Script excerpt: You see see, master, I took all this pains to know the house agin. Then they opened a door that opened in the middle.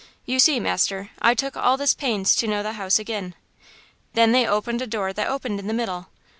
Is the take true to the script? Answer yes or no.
no